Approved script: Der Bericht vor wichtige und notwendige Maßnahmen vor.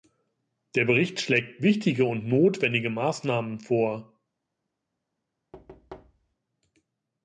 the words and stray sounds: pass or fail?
fail